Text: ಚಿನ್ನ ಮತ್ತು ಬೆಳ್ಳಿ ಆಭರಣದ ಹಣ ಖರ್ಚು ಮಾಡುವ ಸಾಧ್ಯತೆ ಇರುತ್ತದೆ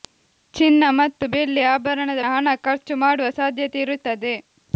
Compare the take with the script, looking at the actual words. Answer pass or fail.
pass